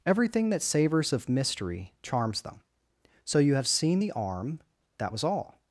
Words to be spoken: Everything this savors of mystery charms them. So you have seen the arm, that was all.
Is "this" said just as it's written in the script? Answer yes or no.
no